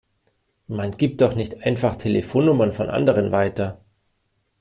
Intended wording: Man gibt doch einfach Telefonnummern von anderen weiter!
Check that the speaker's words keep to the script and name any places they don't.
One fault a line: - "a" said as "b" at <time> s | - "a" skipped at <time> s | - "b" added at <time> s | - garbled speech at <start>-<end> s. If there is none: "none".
- "nicht" added at 1.4 s